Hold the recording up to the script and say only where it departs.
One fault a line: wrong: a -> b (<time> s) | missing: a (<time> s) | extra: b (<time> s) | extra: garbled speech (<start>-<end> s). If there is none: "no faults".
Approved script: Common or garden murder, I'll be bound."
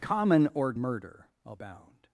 missing: garden (0.7 s)
missing: be (1.6 s)